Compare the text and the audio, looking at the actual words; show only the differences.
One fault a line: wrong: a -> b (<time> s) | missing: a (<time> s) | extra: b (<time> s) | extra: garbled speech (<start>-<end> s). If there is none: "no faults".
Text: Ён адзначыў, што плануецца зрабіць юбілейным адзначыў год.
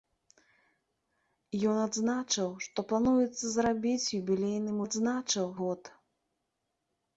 no faults